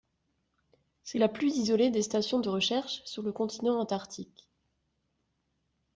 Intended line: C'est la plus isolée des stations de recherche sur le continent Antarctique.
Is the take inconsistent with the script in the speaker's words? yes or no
no